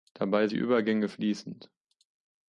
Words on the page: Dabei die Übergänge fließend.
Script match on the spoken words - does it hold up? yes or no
yes